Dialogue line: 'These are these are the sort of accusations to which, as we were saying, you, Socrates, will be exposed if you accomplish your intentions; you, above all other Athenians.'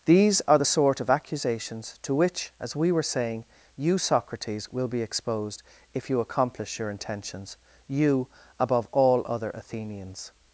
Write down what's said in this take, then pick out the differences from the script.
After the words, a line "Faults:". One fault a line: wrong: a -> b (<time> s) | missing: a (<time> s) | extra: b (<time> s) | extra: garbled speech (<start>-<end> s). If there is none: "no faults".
'These are the sort of accusations to which, as we were saying, you, Socrates, will be exposed if you accomplish your intentions; you, above all other Athenians.'
Faults:
missing: these are (0.6 s)